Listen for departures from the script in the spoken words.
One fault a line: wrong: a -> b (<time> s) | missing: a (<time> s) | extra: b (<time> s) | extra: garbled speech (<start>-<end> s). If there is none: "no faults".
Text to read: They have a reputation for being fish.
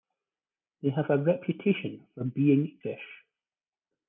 no faults